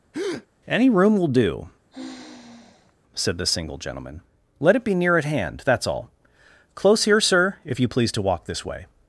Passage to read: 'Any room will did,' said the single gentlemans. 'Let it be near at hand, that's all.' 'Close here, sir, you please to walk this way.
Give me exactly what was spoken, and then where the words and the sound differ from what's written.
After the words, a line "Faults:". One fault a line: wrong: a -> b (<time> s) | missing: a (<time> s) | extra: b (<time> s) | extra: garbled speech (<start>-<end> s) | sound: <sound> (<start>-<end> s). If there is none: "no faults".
'Any room will do,' said the single gentleman. 'Let it be near at hand, that's all.' 'Close here, sir, if you please to walk this way.
Faults:
sound: breath (0.1-0.5 s)
wrong: did -> do (1.3 s)
sound: sigh (1.9-2.9 s)
wrong: gentlemans -> gentleman (3.8 s)
extra: if (7.6 s)